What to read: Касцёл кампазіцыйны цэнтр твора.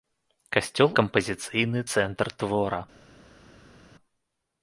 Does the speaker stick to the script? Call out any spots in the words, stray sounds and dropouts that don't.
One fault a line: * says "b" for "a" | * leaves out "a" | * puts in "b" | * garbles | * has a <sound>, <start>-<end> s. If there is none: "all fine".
all fine